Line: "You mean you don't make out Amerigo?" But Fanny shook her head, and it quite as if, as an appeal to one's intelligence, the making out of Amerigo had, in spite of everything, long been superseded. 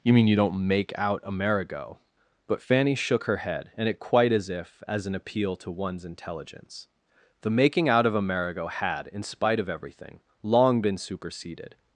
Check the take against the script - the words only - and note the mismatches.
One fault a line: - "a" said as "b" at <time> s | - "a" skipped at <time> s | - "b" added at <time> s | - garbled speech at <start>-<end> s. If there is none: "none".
none